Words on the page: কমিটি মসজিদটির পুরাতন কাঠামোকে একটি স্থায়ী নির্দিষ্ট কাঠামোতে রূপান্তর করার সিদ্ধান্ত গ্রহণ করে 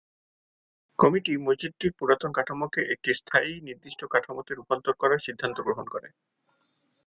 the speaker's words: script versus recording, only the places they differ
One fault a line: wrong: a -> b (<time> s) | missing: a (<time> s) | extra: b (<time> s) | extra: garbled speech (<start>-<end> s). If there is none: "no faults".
no faults